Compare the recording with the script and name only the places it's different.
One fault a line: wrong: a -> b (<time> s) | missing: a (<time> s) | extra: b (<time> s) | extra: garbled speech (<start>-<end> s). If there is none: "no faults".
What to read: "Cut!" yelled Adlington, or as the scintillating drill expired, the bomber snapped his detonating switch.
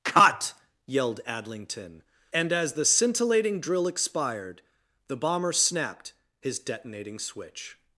wrong: or -> and (2.3 s)